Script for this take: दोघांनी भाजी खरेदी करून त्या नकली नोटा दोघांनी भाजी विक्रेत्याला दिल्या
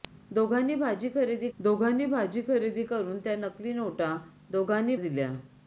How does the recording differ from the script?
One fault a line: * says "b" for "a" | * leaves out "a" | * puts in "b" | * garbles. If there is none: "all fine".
* puts in "दोघांनी भाजी खरेदी"
* leaves out "भाजी विक्रेत्याला"